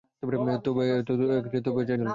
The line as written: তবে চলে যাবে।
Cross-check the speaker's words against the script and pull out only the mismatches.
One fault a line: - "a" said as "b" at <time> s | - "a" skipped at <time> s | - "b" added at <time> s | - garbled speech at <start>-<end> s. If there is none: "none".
none